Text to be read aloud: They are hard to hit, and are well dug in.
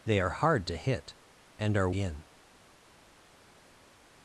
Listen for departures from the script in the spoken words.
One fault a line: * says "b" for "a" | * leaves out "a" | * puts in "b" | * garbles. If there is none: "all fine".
* leaves out "well dug"